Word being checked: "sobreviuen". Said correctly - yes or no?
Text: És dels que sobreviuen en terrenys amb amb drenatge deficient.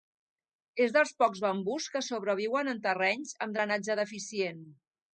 yes